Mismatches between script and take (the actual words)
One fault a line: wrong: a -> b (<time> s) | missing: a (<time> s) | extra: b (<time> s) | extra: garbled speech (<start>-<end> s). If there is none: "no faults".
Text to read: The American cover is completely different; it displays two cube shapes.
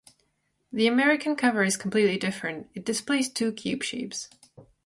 no faults